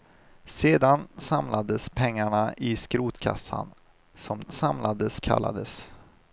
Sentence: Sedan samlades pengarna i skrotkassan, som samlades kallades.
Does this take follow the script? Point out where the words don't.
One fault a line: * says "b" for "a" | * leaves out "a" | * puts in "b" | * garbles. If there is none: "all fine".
all fine